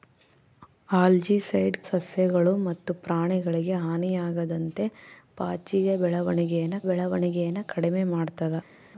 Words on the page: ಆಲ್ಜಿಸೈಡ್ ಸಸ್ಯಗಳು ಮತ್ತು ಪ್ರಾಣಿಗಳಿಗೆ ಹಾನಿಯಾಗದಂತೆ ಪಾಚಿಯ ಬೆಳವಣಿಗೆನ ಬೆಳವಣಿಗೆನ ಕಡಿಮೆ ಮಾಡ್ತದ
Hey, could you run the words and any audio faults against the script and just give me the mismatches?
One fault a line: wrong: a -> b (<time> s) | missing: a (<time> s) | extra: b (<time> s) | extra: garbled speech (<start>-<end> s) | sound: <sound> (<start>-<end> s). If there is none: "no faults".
no faults